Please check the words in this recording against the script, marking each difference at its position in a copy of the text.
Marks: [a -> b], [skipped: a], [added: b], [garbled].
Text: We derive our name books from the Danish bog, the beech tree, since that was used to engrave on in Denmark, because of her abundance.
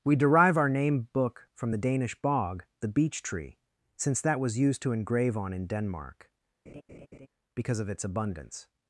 We derive our name [books -> book] from the Danish bog, the beech tree, since that was used to engrave on in Denmark, because of [her -> its] abundance.